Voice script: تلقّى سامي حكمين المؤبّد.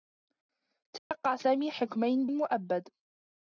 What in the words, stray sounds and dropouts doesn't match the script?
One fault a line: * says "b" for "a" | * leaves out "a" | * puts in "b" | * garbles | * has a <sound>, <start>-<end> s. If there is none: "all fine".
* has a dropout, 1.0-1.1 s